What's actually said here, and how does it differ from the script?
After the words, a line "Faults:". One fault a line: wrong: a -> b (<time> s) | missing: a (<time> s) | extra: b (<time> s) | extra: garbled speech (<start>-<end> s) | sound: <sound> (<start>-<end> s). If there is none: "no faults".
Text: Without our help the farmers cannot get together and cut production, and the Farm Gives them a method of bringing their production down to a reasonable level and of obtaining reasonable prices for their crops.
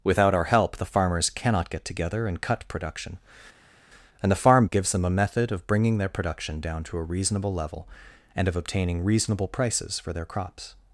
Without our help the farmers cannot get together and cut production, and the Farm Gives them a method of bringing their production down to a reasonable level and of obtaining reasonable prices for their crops.
Faults:
no faults